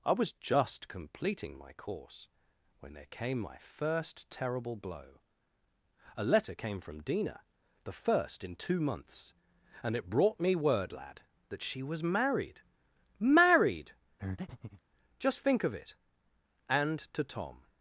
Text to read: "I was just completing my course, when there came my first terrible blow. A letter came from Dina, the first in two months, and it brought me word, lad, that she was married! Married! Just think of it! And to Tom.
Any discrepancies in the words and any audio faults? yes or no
yes